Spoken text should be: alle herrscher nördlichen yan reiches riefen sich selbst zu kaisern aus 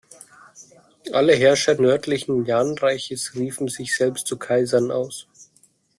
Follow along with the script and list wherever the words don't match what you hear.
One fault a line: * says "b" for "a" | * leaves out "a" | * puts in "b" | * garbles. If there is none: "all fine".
all fine